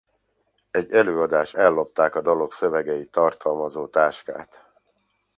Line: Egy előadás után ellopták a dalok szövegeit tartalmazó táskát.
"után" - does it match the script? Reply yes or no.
no